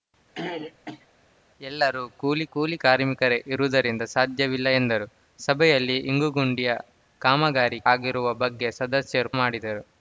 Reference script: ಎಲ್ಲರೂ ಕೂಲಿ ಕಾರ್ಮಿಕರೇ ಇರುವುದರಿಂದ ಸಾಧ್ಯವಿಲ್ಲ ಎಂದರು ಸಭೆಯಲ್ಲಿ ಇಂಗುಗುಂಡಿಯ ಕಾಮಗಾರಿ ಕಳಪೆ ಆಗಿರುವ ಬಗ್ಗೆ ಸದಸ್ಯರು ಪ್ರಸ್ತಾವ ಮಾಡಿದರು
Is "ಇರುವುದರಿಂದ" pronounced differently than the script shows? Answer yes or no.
no